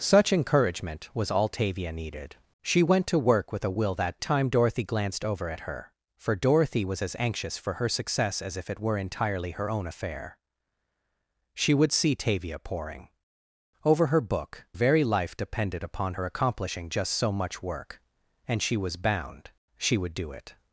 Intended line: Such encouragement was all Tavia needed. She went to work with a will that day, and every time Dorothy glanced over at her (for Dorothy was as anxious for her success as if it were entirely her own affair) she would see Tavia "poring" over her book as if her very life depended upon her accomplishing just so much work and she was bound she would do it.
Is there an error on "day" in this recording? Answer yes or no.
yes